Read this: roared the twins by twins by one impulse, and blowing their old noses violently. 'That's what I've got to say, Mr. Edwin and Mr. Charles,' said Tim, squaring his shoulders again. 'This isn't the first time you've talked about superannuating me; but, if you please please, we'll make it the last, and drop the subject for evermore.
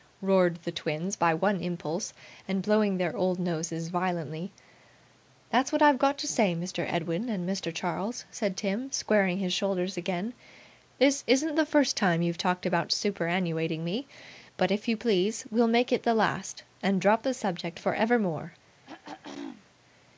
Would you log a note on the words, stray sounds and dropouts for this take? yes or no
yes